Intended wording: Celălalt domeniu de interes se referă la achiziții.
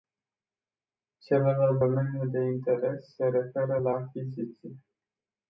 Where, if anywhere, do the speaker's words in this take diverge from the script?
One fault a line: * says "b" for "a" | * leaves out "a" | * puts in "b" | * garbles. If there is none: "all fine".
all fine